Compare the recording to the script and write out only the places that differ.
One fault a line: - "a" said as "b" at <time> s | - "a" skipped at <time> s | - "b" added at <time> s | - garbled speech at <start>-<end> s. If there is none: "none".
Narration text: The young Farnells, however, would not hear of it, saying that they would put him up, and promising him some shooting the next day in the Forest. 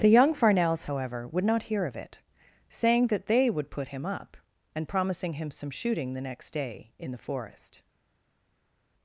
none